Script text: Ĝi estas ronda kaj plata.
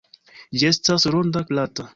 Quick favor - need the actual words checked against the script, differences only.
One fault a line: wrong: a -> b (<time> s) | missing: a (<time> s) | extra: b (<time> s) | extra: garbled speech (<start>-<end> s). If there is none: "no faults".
missing: kaj (1.5 s)